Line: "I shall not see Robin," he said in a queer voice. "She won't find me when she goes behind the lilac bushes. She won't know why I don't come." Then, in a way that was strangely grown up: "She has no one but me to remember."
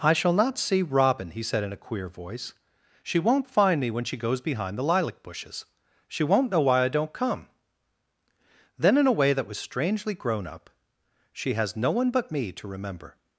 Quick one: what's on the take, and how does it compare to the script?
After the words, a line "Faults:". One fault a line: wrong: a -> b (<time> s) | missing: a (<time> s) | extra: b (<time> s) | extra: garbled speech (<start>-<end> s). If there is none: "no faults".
"I shall not see Robin," he said in a queer voice. "She won't find me when she goes behind the lilac bushes. She won't know why I don't come." Then, in a way that was strangely grown up: "She has no one but me to remember."
Faults:
no faults